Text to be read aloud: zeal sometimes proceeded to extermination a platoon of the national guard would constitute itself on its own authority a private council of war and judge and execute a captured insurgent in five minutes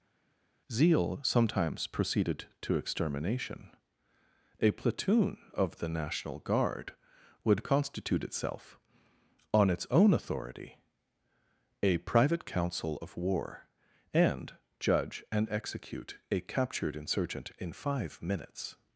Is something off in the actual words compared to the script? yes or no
no